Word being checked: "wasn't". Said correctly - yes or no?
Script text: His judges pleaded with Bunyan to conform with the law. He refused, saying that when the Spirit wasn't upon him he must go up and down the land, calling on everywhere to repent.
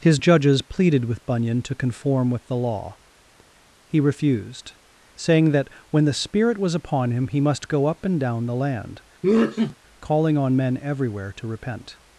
no